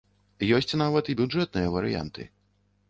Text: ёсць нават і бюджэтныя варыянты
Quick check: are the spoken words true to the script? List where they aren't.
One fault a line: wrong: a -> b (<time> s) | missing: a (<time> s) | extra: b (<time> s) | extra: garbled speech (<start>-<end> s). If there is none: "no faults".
no faults